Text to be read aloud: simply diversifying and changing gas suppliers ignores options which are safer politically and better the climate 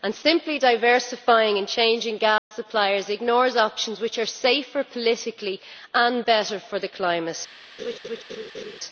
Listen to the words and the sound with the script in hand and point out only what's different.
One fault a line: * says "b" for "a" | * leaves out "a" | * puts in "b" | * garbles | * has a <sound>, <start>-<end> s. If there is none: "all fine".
* has a dropout, 2.4-2.5 s
* puts in "for"
* has a laugh, 7.8-8.8 s